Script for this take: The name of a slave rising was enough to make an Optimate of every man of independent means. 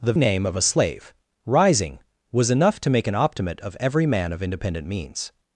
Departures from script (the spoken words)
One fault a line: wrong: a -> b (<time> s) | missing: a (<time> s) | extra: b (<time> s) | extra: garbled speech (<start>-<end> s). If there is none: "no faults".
no faults